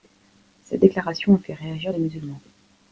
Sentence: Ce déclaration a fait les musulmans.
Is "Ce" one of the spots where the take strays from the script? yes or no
yes